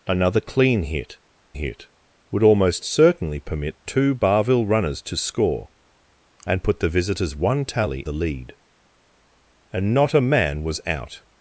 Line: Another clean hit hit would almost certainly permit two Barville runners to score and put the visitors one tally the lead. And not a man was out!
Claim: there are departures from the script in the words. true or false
false